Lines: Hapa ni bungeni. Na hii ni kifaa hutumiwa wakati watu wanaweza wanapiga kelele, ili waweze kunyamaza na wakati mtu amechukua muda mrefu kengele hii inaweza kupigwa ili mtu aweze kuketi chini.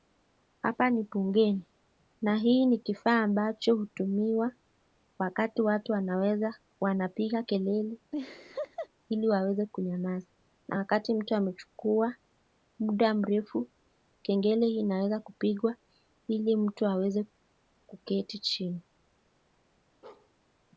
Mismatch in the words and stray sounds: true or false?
true